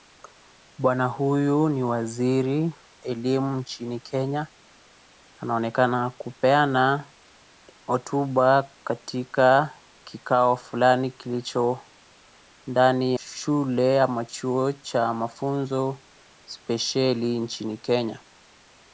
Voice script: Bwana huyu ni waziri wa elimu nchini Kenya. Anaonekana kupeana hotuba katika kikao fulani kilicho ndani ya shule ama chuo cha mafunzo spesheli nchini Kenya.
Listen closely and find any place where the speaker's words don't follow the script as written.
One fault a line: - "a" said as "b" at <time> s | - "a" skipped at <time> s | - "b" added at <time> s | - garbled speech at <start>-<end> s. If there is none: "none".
- "wa" skipped at 2.8 s
- "ya" skipped at 13.1 s